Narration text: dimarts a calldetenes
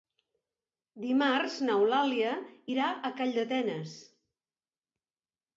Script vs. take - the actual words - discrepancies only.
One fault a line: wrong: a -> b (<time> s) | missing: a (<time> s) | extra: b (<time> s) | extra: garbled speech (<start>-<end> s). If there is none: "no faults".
extra: n'eulàlia irà (1.7 s)